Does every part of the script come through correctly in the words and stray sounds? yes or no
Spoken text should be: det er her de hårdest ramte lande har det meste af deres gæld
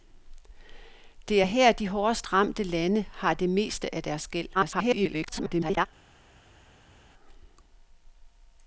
no